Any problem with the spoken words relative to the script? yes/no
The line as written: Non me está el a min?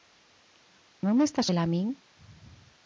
no